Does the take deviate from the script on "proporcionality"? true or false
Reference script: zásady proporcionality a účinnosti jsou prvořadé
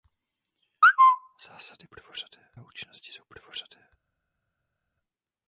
true